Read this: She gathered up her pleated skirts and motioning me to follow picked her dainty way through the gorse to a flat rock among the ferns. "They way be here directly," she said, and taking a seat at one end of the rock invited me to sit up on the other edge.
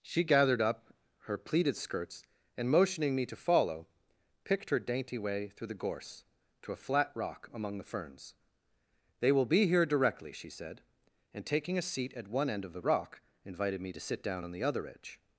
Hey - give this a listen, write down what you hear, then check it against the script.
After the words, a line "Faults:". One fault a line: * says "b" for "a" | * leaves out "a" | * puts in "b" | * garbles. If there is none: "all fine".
She gathered up her pleated skirts and motioning me to follow picked her dainty way through the gorse to a flat rock among the ferns. "They will be here directly," she said, and taking a seat at one end of the rock invited me to sit down on the other edge.
Faults:
* says "will" for "way"
* says "down" for "up"